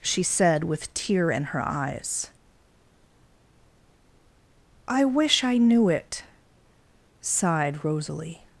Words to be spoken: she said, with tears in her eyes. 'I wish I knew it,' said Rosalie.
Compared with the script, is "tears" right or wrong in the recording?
wrong